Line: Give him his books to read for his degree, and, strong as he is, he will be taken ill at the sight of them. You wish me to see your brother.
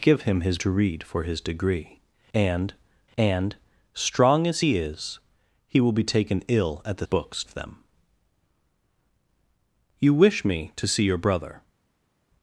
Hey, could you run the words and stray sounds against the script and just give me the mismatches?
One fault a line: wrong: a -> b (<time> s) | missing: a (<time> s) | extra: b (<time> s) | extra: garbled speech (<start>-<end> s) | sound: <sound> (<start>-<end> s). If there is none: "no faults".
missing: books (0.6 s)
extra: and (3.2 s)
wrong: sight -> books (7.0 s)